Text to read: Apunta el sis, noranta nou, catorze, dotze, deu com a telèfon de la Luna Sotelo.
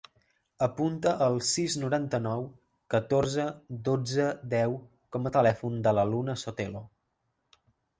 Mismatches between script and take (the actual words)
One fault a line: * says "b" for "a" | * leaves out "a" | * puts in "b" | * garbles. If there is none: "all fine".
all fine